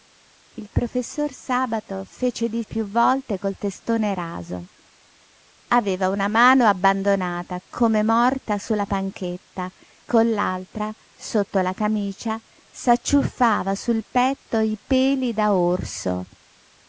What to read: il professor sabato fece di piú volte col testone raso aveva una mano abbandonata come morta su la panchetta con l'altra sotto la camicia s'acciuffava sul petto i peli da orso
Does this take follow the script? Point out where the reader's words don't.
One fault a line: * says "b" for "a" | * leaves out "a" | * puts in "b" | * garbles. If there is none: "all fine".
all fine